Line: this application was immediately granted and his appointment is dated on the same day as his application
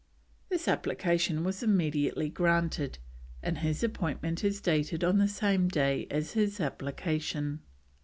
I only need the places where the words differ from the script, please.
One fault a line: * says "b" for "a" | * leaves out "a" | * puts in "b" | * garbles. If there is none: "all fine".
all fine